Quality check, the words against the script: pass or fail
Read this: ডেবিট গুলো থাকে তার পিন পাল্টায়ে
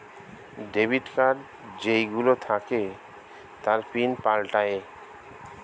fail